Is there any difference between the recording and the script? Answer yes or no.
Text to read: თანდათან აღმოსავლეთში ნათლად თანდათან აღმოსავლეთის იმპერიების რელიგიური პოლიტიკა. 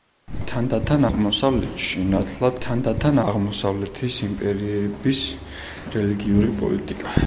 no